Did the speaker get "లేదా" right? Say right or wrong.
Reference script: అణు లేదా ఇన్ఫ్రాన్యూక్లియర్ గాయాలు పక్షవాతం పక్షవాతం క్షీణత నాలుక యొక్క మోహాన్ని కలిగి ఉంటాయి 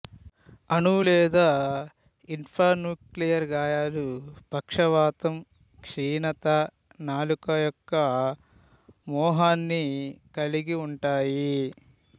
right